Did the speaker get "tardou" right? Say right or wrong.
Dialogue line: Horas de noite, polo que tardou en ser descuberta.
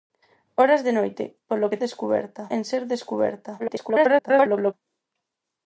wrong